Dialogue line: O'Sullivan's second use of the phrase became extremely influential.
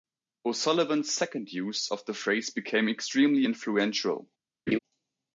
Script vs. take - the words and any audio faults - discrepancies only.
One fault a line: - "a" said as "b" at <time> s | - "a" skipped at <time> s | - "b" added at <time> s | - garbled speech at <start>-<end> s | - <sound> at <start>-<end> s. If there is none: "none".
- laugh at 4.7-4.8 s